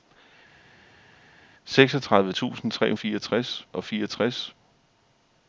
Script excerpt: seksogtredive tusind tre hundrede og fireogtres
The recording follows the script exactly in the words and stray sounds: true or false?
false